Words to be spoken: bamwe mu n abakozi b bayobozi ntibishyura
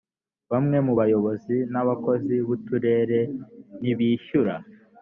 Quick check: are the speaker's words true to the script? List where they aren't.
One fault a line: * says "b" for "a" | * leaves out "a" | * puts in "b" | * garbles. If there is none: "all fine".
* puts in "bayobozi"
* says "uturere" for "bayobozi"